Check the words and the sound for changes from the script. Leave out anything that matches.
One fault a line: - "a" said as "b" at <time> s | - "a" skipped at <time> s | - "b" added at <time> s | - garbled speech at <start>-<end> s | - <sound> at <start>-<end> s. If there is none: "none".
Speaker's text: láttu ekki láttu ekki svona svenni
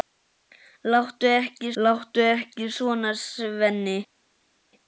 none